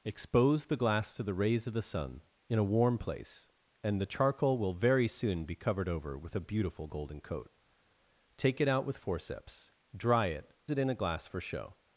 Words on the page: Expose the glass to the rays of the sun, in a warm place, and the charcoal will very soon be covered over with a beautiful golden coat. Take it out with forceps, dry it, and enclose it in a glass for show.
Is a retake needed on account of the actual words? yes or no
yes